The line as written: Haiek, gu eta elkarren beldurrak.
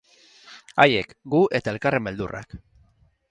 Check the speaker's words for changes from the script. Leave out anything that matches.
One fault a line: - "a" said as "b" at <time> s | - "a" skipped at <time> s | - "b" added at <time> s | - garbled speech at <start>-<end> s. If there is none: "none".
none